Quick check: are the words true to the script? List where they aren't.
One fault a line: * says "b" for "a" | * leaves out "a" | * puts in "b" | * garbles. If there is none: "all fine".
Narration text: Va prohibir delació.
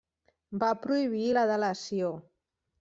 * puts in "la"